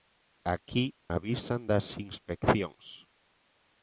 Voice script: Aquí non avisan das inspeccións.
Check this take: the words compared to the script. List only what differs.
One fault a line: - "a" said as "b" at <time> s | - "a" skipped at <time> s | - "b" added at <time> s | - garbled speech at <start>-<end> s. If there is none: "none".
- "non" skipped at 0.8 s